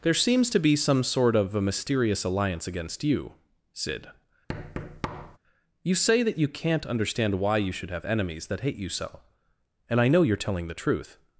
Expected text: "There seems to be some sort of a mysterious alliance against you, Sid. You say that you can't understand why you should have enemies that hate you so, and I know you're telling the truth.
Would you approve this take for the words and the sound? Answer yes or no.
no